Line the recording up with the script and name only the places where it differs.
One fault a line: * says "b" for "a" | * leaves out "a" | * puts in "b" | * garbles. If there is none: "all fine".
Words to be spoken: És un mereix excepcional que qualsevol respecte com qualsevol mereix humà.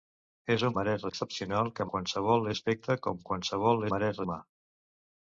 all fine